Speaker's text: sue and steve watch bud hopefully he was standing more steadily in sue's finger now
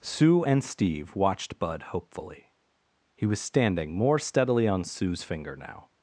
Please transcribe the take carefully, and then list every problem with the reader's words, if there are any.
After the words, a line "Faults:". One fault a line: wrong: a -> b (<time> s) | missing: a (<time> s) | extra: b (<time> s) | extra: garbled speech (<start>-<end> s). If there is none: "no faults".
sue and steve watched bud hopefully he was standing more steadily on sue's finger now
Faults:
wrong: watch -> watched (1.2 s)
wrong: in -> on (4.7 s)